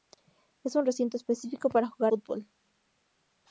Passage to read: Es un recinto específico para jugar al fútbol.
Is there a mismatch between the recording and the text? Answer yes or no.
yes